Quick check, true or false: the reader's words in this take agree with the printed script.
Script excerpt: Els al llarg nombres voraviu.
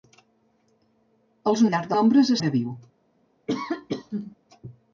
true